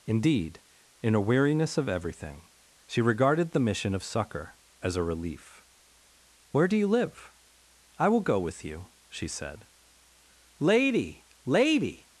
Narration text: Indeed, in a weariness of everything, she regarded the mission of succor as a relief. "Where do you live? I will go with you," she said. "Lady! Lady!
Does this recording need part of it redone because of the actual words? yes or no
no